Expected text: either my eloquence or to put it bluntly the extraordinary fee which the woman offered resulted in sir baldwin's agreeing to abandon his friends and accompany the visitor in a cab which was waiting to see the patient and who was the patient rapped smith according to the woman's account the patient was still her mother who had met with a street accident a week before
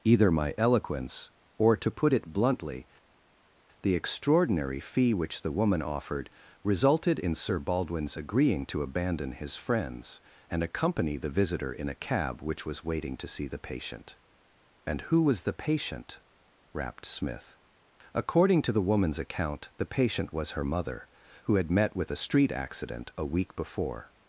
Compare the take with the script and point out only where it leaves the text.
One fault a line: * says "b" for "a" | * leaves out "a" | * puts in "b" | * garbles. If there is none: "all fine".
* leaves out "still"